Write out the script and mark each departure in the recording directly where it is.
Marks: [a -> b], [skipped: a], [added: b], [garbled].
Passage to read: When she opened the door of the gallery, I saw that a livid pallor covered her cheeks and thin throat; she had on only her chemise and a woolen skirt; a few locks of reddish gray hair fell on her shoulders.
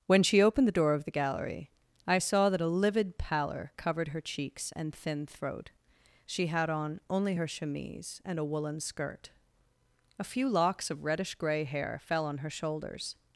When she opened the door of the gallery, I saw that a livid pallor covered her cheeks and thin throat; she had on only her chemise and a woolen skirt; a few locks of reddish gray hair fell on her shoulders.